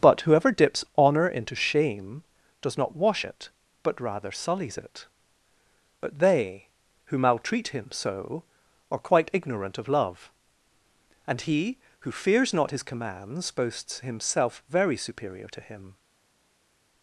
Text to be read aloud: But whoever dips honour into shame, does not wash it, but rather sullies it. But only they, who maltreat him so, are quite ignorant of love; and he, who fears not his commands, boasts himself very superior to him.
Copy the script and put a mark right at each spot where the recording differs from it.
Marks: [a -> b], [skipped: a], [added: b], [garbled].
But whoever dips honour into shame, does not wash it, but rather sullies it. But [skipped: only] they, who maltreat him so, are quite ignorant of love; and he, who fears not his commands, boasts himself very superior to him.